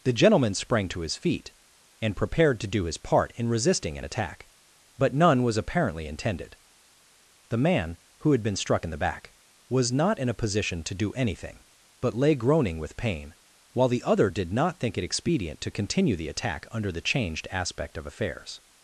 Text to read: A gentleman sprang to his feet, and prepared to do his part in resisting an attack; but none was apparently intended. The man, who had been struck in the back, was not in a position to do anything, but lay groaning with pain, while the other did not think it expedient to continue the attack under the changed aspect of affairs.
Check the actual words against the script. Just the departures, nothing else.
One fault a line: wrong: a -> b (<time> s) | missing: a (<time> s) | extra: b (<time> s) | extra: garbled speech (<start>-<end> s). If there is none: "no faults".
wrong: A -> The (0.0 s)